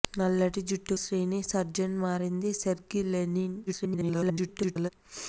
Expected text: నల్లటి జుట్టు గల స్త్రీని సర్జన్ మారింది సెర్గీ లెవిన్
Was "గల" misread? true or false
true